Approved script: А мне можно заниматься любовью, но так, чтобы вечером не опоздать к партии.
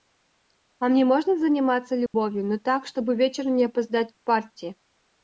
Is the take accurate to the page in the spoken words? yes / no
yes